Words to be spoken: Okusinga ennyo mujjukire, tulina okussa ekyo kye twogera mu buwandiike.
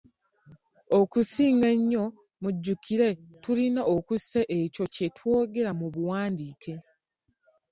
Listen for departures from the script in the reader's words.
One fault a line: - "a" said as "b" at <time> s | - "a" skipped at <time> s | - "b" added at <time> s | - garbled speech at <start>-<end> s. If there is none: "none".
none